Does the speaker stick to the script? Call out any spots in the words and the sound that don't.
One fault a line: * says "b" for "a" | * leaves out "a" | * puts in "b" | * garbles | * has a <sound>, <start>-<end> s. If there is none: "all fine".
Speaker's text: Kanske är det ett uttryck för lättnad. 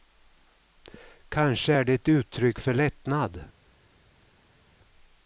all fine